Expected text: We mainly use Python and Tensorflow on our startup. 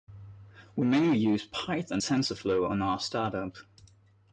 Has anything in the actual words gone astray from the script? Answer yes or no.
yes